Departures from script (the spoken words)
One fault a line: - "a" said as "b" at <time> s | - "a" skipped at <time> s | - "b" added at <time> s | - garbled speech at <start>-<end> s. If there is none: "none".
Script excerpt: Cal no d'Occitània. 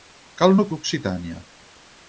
none